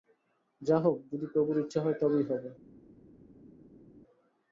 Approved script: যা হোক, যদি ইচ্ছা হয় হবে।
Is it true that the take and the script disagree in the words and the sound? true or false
true